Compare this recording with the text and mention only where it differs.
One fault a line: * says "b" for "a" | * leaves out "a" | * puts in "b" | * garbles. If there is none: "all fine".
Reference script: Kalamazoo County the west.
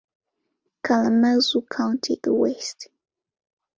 all fine